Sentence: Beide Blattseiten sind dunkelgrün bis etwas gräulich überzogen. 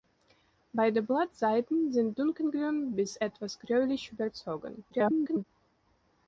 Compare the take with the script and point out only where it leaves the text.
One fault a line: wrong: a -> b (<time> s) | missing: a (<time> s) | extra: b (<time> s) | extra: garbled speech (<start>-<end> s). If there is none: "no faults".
extra: garbled speech (4.9-5.4 s)